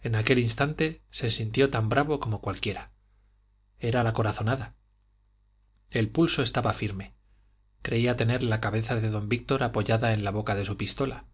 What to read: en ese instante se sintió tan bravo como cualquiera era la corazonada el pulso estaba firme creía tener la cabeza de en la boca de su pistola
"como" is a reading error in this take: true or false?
false